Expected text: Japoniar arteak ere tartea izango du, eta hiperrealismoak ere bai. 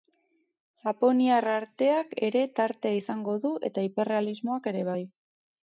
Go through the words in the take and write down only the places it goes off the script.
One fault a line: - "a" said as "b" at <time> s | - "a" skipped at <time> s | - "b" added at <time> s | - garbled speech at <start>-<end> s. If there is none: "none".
none